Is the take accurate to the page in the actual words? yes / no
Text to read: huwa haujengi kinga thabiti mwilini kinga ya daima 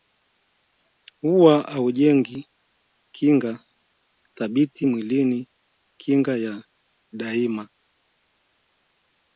yes